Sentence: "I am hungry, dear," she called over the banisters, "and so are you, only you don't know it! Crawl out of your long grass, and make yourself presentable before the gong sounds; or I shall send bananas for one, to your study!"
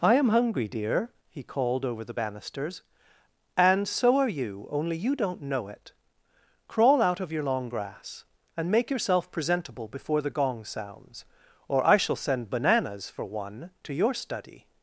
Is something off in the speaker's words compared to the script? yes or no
yes